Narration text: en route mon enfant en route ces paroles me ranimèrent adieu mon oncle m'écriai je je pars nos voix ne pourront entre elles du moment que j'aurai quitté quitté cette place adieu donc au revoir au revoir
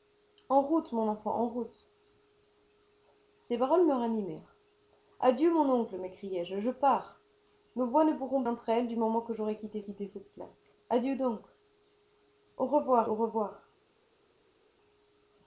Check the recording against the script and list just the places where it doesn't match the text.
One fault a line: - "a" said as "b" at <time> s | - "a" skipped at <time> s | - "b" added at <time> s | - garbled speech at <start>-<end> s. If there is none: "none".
none